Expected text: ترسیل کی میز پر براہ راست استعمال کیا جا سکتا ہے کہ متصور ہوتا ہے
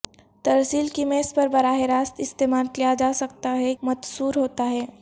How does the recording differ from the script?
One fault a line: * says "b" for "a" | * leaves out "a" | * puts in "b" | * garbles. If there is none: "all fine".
* leaves out "کہ"